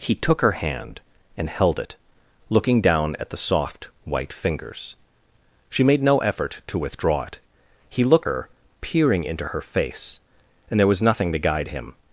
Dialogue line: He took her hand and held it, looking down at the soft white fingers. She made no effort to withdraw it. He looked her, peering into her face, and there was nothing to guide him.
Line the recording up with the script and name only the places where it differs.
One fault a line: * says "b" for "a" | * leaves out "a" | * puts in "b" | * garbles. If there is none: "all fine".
all fine